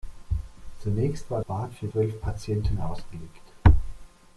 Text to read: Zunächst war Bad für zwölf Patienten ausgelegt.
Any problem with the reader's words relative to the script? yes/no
no